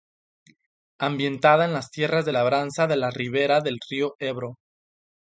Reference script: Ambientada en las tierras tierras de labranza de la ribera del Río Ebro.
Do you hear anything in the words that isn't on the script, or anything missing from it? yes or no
yes